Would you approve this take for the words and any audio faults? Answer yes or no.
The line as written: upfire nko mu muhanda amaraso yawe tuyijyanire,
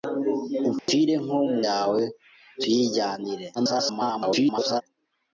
no